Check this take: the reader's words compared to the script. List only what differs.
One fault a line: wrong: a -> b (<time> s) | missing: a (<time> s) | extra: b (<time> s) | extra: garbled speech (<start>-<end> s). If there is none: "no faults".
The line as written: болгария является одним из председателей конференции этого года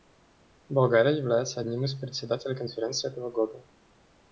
no faults